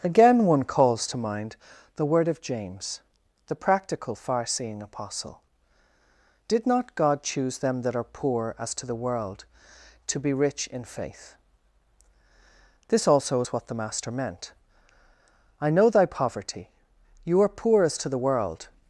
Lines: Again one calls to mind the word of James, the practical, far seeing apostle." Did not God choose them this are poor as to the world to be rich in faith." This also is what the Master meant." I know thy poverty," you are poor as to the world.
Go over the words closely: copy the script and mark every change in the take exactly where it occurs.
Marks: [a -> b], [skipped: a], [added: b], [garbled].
Again one calls to mind the word of James, the practical, far seeing apostle." Did not God choose them [this -> that] are poor as to the world to be rich in faith." This also is what the Master meant." I know thy poverty," you are poor as to the world.